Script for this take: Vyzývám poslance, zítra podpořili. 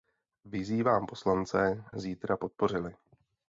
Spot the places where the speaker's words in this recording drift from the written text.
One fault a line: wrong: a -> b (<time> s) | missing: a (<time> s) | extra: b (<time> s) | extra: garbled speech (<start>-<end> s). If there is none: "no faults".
no faults